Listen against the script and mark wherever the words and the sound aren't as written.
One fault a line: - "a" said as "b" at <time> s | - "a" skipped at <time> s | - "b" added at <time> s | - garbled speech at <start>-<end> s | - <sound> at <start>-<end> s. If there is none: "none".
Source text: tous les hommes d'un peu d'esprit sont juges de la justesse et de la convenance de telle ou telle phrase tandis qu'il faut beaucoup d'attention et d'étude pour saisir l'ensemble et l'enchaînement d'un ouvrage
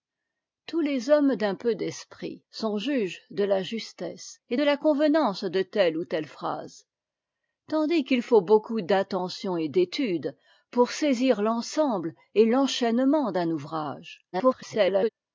- garbled speech at 14.3-15.1 s